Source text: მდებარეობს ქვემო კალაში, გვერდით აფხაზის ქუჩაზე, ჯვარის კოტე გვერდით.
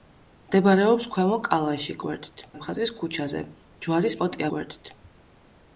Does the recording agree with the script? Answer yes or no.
yes